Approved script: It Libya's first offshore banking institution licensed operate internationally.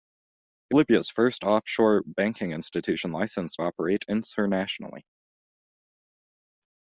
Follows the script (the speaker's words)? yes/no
yes